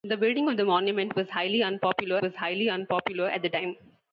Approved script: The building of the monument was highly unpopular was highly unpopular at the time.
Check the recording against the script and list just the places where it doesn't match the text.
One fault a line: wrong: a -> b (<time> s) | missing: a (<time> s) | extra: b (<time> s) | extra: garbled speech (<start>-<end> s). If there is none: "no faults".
no faults